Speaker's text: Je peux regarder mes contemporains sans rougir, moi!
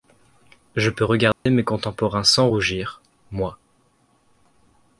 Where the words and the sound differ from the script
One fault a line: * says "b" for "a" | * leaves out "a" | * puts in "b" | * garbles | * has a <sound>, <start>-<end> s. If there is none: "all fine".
* has a dropout, 1.3-1.5 s